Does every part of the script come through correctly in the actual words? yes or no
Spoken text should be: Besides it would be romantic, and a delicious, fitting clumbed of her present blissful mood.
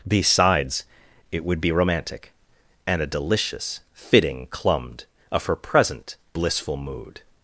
yes